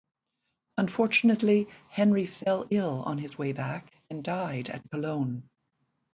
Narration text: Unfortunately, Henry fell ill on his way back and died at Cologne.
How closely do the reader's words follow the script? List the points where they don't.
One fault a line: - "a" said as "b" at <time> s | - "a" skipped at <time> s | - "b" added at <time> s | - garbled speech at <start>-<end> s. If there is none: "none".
none